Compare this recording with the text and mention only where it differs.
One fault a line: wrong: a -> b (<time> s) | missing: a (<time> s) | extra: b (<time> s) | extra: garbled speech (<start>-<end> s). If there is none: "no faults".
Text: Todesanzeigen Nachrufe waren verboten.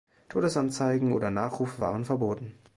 extra: oder (1.1 s)